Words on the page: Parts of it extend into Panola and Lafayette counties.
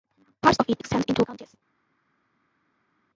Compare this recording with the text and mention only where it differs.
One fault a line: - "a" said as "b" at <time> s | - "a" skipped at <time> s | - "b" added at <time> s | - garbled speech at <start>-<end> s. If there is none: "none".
- "Panola and Lafayette" skipped at 1.2 s